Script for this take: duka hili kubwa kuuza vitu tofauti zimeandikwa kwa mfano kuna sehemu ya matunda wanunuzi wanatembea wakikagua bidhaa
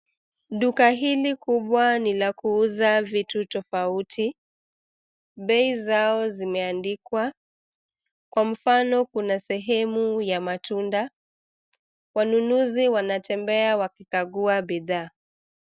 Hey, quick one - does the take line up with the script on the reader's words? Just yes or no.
no